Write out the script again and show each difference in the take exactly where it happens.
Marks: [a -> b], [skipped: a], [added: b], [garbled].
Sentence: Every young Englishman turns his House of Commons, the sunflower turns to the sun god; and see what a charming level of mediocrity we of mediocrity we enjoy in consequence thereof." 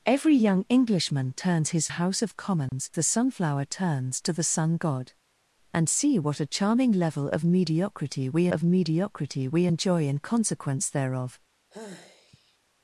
Every young Englishman turns his House of Commons, the sunflower turns to the sun god; and see what a charming level of mediocrity we of mediocrity we enjoy in consequence thereof."